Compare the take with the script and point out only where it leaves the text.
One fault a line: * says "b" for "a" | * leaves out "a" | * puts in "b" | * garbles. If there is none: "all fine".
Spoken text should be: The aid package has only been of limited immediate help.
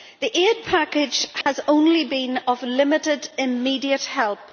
all fine